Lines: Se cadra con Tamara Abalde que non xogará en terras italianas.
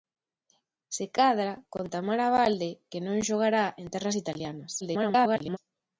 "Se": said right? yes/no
yes